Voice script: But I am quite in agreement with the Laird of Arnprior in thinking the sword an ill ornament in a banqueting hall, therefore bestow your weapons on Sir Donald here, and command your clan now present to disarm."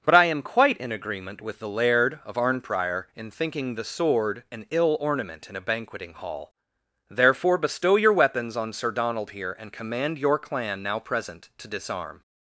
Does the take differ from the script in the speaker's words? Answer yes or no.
no